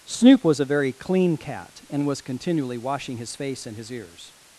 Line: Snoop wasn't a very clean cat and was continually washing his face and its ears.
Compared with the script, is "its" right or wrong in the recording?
wrong